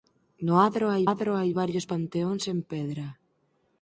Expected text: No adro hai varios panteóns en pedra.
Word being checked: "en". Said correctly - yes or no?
yes